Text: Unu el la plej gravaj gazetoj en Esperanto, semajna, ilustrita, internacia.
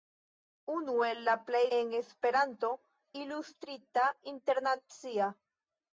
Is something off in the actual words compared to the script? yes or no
yes